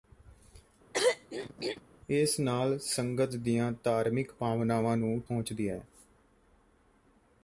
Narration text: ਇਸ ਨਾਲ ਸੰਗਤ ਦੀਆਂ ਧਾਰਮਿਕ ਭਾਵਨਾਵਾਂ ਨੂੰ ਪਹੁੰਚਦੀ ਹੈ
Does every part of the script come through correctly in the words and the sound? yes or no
no